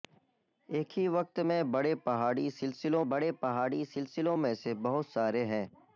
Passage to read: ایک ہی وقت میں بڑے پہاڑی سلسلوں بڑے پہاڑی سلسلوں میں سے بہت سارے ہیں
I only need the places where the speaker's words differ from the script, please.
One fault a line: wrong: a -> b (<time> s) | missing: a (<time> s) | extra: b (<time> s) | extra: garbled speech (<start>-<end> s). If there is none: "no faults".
no faults